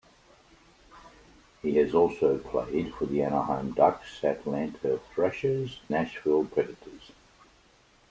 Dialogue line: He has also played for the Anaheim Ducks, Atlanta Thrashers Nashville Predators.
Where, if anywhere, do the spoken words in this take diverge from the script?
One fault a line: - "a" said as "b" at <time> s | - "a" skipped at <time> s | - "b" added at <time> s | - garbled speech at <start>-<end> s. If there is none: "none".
none